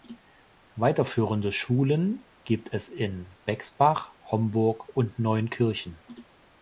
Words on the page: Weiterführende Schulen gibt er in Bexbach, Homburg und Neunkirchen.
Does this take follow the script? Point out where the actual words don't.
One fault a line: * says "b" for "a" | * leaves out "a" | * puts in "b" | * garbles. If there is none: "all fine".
* says "es" for "er"